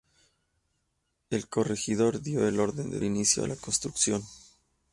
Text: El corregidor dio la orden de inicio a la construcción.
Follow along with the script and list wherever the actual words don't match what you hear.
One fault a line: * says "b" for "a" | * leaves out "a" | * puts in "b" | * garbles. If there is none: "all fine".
all fine